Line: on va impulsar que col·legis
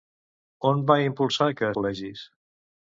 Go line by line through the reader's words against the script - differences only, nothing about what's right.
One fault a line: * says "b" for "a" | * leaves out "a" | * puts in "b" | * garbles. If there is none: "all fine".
all fine